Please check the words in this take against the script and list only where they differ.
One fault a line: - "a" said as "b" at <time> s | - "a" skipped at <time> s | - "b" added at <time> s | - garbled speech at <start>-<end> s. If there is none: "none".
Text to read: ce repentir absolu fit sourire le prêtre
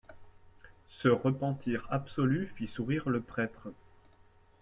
none